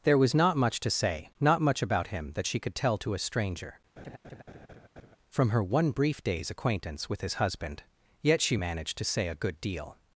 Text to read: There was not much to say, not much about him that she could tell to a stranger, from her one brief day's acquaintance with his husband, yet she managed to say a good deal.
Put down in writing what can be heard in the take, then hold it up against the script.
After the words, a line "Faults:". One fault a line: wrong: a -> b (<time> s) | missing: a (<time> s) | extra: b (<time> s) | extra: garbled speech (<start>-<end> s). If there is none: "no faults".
There was not much to say, not much about him that she could tell to a stranger, from her one brief day's acquaintance with his husband, yet she managed to say a good deal.
Faults:
no faults